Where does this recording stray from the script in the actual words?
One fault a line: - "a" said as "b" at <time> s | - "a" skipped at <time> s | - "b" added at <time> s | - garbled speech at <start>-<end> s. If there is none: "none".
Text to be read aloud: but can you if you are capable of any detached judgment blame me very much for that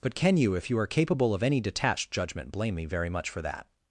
none